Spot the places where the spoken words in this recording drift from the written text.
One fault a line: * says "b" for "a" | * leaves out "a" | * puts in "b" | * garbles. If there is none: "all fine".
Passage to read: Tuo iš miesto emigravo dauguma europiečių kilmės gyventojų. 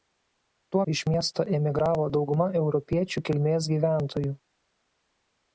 all fine